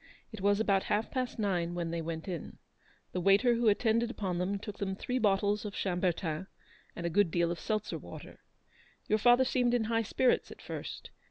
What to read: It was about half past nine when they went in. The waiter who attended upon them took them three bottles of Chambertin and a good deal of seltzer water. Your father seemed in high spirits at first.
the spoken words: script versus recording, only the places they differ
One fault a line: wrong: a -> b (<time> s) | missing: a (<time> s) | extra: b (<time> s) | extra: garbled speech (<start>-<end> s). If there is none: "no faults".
no faults